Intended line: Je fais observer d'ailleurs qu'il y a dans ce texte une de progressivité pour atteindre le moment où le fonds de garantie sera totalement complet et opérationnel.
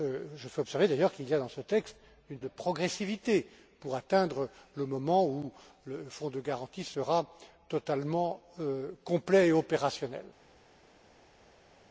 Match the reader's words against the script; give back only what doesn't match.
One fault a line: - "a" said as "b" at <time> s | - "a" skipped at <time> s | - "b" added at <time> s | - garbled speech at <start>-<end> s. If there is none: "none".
none